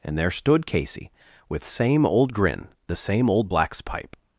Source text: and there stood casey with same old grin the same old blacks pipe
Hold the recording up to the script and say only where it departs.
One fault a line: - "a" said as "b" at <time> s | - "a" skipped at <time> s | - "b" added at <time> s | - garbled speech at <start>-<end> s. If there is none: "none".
none